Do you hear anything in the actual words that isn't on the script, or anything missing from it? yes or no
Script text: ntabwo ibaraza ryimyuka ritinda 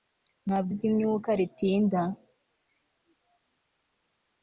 yes